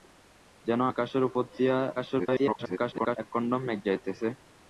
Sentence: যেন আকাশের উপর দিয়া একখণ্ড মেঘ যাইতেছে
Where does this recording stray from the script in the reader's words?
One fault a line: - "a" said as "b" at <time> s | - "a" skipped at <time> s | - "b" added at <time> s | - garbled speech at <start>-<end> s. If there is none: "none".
- garbled speech at 2.0-3.2 s